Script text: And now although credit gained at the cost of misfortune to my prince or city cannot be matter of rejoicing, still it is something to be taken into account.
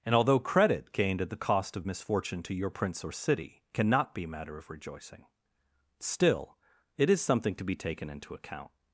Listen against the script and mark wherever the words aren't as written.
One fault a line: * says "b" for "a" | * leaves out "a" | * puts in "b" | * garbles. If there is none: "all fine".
* leaves out "now"
* says "your" for "my"